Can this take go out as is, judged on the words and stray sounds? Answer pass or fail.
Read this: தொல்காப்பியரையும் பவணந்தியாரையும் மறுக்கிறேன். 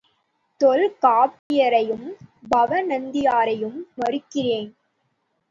fail